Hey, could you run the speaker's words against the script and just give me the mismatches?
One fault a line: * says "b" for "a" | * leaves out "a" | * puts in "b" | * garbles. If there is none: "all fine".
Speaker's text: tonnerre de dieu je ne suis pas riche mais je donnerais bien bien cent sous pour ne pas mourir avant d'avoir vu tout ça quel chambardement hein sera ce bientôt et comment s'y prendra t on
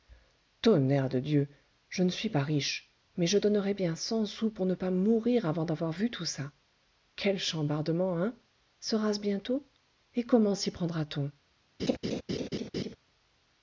* leaves out "bien"